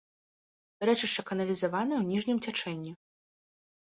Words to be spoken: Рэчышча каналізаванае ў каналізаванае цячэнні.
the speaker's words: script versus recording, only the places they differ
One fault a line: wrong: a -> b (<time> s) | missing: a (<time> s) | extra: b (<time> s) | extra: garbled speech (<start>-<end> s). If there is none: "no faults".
wrong: каналізаванае -> ніжнім (2.1 s)